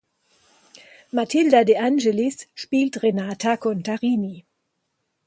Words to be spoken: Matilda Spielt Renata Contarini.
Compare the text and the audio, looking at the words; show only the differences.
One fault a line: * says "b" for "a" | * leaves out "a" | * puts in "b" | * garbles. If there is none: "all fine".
* puts in "De Angelis"